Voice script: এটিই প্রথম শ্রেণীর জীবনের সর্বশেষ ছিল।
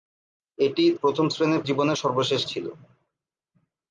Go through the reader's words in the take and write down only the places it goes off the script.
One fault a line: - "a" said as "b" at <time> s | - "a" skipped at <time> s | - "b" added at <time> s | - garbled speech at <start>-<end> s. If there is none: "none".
none